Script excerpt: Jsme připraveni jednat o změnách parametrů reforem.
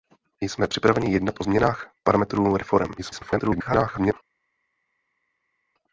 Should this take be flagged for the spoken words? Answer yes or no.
yes